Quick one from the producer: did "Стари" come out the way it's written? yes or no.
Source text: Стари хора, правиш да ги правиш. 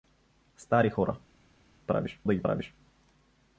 yes